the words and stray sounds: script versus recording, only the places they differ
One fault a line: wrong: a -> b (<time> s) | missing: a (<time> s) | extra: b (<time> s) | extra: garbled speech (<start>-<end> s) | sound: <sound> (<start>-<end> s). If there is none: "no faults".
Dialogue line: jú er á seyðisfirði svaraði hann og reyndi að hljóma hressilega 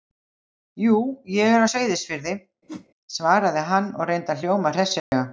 extra: ég (1.4 s)
sound: whoosh (2.7-2.9 s)
sound: dropout (5.0-5.1 s)